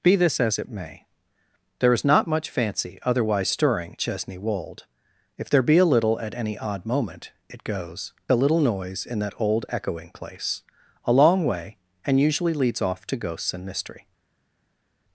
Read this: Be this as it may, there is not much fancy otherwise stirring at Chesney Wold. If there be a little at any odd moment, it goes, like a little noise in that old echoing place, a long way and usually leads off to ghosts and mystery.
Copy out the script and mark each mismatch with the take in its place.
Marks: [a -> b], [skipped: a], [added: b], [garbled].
Be this as it may, there is not much fancy otherwise stirring [skipped: at] Chesney Wold. If there be a little at any odd moment, it goes, [skipped: like] a little noise in that old echoing place, a long way and usually leads off to ghosts and mystery.